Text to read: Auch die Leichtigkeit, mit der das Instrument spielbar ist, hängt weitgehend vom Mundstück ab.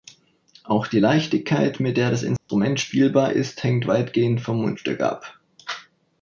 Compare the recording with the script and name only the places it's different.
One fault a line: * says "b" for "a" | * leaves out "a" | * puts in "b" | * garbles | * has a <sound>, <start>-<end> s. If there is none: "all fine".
* has a dropout, 2.4-2.5 s